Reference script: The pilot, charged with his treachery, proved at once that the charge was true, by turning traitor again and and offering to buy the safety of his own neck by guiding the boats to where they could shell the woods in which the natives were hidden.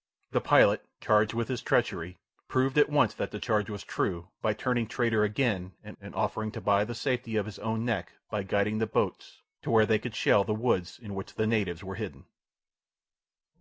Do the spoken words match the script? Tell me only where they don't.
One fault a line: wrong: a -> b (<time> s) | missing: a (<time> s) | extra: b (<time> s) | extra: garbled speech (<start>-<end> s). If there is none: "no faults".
no faults